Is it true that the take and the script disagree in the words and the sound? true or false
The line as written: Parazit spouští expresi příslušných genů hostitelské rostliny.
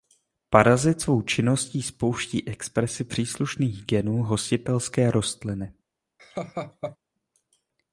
true